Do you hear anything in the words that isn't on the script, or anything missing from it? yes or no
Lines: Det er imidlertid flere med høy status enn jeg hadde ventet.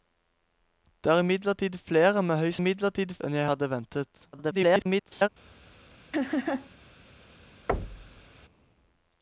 yes